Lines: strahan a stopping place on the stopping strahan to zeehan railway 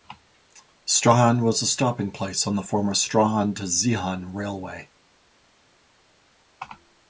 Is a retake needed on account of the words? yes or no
yes